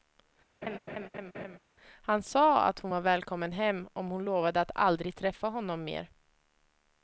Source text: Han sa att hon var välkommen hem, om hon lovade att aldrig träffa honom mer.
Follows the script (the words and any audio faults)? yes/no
no